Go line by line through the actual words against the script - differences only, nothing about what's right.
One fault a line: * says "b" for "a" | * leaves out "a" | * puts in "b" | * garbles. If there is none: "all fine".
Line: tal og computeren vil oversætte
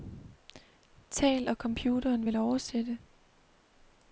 all fine